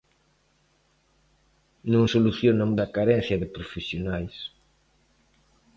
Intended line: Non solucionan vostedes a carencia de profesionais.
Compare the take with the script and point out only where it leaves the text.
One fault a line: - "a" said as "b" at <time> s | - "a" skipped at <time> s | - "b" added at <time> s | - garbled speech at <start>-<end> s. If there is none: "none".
- "vostedes" skipped at 2.7 s